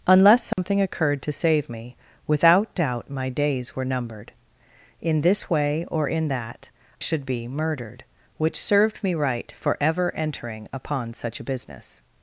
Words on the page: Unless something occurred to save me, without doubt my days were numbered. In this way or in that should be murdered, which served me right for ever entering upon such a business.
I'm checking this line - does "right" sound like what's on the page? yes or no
yes